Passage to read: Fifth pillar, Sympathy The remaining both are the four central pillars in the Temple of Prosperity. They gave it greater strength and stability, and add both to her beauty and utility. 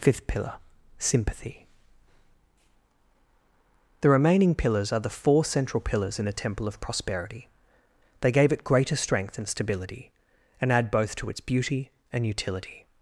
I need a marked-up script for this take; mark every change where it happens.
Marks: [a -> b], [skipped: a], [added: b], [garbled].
Fifth pillar, Sympathy The remaining [both -> pillars] are the four central pillars in the Temple of Prosperity. They gave it greater strength and stability, and add both to [her -> its] beauty and utility.